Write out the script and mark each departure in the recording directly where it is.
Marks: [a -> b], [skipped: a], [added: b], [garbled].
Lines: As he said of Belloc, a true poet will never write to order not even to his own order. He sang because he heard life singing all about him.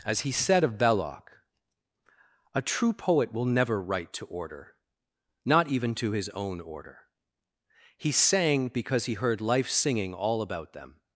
As he said of Belloc, a true poet will never write to order not even to his own order. He sang because he heard life singing all about [him. -> them]